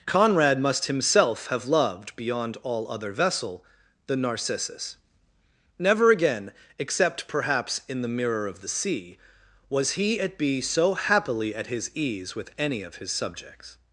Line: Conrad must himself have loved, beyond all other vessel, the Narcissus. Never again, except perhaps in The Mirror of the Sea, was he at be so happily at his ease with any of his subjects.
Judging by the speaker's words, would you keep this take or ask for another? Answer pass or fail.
pass